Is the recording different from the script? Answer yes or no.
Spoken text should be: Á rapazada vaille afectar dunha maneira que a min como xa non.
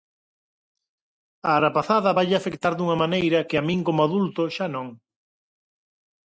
yes